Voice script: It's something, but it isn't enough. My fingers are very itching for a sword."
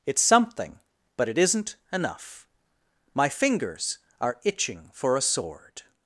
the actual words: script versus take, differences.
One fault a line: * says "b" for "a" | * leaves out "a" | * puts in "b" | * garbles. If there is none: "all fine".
* leaves out "very"